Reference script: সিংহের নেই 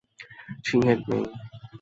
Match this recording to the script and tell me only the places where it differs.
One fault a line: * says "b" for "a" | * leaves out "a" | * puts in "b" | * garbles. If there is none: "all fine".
all fine